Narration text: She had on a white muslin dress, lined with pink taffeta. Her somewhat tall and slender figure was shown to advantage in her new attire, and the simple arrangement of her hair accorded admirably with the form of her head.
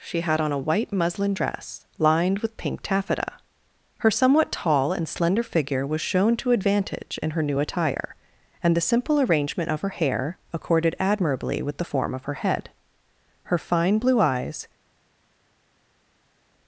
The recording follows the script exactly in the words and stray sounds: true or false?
false